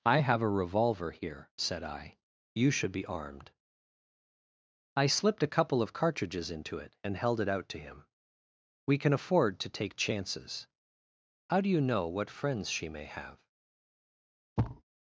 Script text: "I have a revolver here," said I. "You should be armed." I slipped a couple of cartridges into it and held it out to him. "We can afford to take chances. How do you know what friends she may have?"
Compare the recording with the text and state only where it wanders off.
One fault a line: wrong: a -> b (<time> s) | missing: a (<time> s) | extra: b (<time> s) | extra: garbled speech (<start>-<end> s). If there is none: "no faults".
no faults